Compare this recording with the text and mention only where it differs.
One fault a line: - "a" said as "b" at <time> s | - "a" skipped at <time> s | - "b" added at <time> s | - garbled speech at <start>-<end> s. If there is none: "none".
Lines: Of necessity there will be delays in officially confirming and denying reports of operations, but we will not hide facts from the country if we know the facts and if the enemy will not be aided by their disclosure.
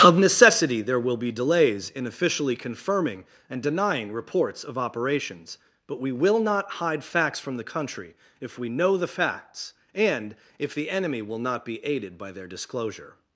none